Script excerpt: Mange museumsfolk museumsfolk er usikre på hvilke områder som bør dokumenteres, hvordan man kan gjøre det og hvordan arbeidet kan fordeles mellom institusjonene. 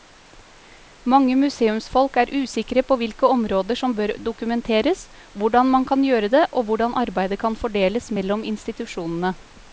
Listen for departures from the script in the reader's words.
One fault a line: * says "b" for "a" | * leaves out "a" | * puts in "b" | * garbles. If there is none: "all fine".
* leaves out "museumsfolk"